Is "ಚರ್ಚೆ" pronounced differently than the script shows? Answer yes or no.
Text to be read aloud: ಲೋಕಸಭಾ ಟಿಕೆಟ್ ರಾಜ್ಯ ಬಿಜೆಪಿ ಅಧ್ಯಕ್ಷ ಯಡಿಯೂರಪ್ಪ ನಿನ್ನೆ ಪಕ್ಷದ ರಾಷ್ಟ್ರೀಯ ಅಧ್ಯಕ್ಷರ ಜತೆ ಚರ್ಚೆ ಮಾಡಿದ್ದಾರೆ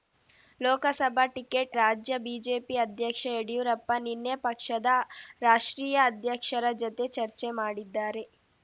no